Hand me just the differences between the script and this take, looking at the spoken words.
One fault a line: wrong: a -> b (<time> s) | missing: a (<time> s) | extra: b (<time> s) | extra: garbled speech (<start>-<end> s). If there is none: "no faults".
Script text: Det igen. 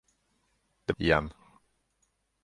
no faults